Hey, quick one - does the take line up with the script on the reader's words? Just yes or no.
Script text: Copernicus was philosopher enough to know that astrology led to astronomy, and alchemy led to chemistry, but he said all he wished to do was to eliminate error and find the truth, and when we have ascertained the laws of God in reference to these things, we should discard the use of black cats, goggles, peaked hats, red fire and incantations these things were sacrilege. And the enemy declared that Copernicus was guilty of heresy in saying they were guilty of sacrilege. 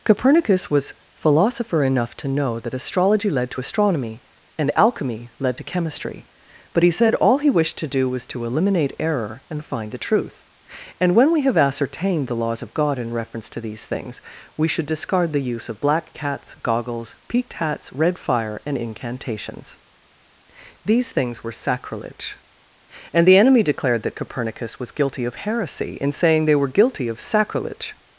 yes